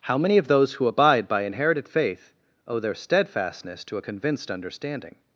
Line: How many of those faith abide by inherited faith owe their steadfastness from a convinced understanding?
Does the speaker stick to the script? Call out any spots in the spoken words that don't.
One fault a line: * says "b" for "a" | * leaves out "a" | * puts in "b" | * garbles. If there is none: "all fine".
* says "who" for "faith"
* says "to" for "from"